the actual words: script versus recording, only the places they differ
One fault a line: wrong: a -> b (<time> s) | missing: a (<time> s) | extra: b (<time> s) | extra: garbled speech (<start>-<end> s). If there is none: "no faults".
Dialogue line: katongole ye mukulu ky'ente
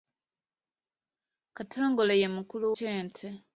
no faults